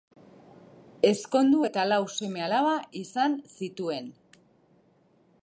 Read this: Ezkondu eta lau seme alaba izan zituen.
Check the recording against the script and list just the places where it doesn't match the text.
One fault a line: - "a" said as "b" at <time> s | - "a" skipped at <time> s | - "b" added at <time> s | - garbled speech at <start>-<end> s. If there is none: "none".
none